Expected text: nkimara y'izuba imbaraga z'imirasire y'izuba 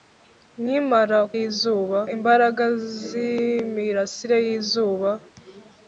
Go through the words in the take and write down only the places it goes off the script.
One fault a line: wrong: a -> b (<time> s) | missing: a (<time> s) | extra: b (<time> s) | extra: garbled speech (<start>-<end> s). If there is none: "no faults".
no faults